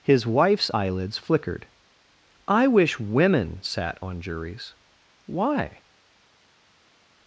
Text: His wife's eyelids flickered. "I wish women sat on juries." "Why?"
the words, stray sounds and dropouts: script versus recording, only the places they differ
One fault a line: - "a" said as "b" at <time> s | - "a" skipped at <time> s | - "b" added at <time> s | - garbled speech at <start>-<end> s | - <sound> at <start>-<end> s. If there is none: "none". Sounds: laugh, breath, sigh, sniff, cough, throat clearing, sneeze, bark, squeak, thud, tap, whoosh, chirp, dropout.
none